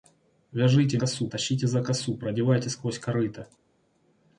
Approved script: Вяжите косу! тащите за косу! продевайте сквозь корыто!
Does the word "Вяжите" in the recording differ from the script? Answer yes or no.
no